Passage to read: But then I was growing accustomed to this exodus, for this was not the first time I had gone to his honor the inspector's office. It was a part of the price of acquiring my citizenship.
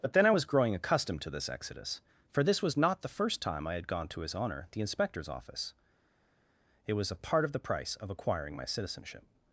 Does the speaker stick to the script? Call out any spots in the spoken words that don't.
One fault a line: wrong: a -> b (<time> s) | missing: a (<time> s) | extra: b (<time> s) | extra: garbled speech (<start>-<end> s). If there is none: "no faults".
no faults